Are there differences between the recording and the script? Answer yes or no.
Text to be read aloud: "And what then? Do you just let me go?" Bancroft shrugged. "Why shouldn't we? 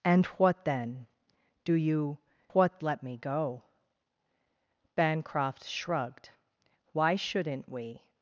yes